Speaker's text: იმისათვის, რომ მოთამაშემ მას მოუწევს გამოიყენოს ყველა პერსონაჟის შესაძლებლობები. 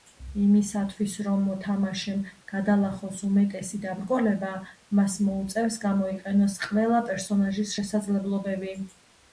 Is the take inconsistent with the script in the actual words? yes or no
yes